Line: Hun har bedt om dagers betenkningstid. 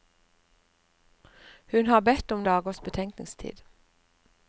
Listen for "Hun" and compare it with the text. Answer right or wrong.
right